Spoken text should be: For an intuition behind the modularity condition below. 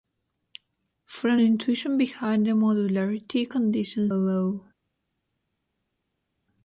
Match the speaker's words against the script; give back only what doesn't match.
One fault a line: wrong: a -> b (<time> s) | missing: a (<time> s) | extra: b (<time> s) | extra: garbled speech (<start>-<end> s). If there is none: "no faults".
no faults